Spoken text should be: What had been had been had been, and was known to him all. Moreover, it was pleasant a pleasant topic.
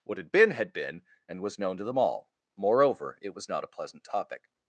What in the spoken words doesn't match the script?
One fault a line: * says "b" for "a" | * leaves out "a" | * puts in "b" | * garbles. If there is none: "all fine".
* leaves out "had been"
* says "them" for "him"
* says "not" for "pleasant"